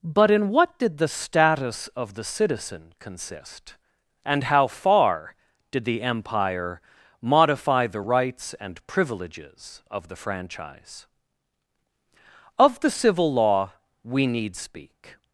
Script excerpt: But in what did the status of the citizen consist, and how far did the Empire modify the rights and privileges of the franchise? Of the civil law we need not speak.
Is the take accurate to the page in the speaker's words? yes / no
no